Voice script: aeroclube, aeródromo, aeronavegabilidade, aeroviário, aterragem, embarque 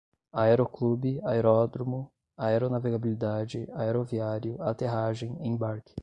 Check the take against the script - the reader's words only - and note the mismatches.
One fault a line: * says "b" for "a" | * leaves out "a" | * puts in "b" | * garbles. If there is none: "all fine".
all fine